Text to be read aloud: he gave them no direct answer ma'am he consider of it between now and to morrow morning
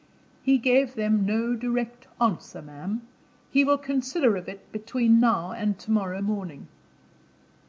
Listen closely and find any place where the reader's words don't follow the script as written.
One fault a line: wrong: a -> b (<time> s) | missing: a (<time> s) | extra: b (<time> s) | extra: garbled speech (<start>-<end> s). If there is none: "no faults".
extra: will (3.6 s)